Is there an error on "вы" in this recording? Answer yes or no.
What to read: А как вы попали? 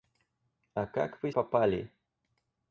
no